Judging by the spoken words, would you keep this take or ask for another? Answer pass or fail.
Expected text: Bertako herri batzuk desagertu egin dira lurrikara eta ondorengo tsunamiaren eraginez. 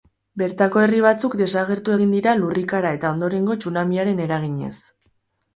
pass